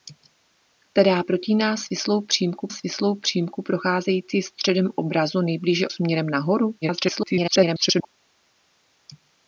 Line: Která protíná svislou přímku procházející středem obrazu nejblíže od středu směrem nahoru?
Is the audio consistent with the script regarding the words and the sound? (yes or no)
no